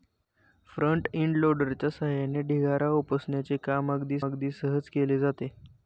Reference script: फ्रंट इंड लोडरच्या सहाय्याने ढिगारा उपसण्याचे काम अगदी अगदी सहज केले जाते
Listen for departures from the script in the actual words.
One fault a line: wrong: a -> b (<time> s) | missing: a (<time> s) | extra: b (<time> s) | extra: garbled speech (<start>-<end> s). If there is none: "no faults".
no faults